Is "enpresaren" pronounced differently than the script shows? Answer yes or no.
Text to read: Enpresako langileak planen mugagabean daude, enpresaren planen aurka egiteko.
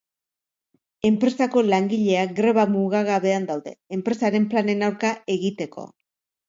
no